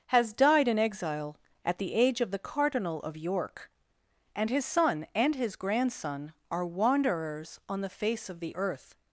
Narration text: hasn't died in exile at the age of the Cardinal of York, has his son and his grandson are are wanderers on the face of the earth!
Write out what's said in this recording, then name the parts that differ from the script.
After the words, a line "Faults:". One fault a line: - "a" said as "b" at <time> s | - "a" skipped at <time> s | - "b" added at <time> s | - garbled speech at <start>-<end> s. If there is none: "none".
has died in exile at the age of the Cardinal of York, and his son and his grandson are wanderers on the face of the earth!
Faults:
- "hasn't" said as "has" at 0.1 s
- "has" said as "and" at 4.3 s
- "are" skipped at 6.7 s